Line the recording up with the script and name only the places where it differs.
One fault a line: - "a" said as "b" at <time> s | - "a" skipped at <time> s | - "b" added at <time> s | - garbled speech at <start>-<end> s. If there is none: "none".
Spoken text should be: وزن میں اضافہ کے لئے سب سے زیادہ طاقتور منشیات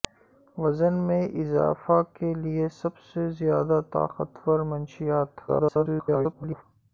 - garbled speech at 5.5-6.6 s